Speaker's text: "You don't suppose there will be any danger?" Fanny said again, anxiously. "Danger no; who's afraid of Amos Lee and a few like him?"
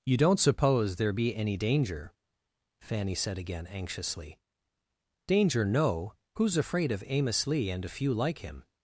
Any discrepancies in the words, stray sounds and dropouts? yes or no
yes